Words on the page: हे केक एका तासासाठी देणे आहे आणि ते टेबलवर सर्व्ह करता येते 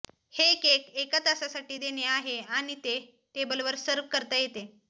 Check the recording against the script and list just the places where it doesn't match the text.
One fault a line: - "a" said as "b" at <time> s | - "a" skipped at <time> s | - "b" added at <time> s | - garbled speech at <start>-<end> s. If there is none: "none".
none